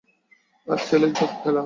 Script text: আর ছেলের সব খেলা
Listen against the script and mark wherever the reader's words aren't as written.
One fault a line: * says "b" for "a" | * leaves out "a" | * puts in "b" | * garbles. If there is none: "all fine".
all fine